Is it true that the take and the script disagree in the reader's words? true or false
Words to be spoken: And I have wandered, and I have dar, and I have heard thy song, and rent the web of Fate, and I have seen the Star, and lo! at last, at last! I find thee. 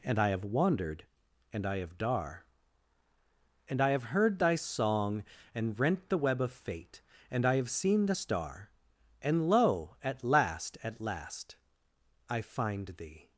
false